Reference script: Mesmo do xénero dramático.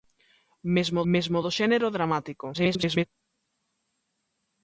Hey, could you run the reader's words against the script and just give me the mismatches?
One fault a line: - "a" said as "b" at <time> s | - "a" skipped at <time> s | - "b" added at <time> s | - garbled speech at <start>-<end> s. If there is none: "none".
- "mesmo" added at 1.1 s
- garbled speech at 2.5-3.1 s